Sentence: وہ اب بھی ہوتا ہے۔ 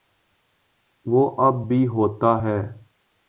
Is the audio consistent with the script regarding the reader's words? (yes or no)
yes